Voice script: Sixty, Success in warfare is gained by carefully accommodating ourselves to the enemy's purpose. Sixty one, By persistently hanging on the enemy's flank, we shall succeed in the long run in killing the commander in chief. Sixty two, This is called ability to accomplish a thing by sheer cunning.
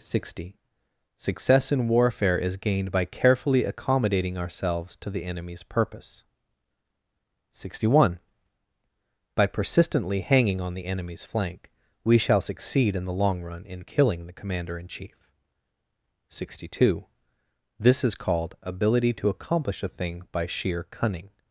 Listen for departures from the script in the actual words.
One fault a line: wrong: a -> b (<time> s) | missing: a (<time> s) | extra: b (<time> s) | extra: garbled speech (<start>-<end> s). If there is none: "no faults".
no faults